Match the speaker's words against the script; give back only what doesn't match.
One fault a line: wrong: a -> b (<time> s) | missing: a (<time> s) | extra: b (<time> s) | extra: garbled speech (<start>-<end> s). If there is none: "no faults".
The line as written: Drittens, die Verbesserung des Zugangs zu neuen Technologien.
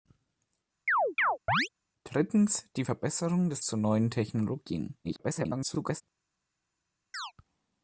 missing: Zugangs (3.6 s)
extra: garbled speech (5.0-6.0 s)